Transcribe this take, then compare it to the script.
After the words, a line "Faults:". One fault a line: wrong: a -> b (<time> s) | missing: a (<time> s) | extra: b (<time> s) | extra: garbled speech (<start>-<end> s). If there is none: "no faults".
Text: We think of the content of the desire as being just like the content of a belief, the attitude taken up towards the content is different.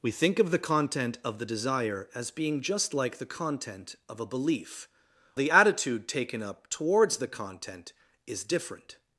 We think of the content of the desire as being just like the content of a belief, the attitude taken up towards the content is different.
Faults:
no faults